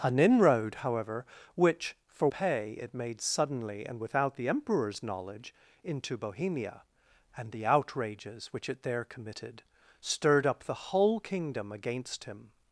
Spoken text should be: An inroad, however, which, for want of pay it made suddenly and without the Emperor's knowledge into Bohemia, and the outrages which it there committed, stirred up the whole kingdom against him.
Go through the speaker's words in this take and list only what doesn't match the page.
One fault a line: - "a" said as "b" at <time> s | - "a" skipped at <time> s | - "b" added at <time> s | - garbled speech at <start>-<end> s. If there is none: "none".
- "want of" skipped at 2.3 s